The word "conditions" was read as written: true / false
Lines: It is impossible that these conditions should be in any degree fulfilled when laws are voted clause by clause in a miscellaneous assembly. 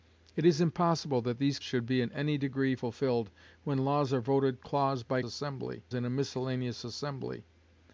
false